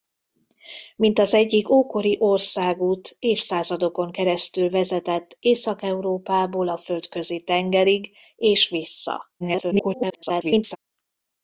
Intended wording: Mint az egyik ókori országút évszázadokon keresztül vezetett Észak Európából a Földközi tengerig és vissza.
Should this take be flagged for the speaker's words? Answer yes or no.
yes